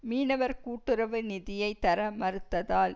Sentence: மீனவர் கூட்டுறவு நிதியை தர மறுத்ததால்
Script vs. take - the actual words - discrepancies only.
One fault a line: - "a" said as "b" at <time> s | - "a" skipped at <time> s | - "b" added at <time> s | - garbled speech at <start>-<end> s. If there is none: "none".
none